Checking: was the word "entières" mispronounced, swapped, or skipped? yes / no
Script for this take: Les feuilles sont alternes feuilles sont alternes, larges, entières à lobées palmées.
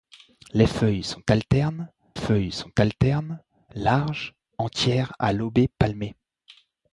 no